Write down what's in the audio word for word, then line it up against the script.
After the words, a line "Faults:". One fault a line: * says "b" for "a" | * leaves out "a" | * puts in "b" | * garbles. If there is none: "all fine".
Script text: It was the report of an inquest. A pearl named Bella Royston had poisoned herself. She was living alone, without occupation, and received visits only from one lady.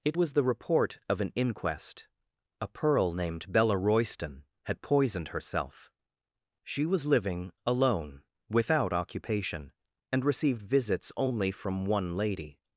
It was the report of an inquest. A pearl named Bella Royston had poisoned herself. She was living alone, without occupation, and received visits only from one lady.
Faults:
all fine